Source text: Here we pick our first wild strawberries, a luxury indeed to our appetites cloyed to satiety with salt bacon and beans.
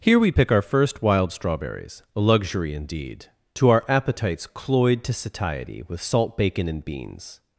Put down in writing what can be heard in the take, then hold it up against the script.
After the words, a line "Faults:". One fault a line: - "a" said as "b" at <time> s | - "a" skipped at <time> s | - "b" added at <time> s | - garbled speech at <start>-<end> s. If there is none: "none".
Here we pick our first wild strawberries, a luxury indeed to our appetites cloyed to satiety with salt bacon and beans.
Faults:
none